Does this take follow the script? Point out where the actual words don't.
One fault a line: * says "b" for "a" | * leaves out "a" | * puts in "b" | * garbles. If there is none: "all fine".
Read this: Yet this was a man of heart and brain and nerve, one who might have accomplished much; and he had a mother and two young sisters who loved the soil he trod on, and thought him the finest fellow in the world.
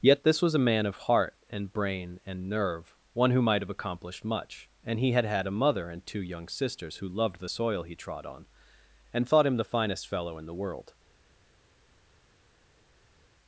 * puts in "had"